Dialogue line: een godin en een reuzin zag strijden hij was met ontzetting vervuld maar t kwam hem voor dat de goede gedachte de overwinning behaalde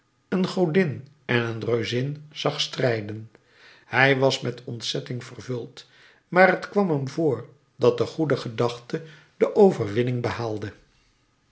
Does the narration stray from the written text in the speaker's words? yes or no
no